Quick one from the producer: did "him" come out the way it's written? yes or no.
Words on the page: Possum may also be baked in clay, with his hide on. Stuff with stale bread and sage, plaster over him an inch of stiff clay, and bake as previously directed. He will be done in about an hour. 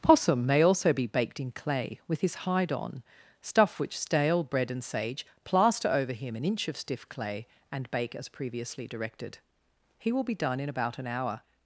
yes